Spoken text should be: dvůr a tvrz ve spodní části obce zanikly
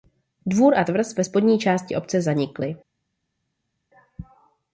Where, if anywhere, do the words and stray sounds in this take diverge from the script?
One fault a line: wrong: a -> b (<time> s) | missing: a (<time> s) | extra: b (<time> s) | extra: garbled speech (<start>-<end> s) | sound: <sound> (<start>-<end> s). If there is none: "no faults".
no faults